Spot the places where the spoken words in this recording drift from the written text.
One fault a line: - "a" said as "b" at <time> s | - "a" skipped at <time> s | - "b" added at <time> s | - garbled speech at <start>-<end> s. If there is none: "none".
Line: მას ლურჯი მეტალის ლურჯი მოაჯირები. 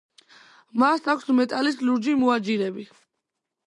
- "ლურჯი" said as "აქვს" at 1.1 s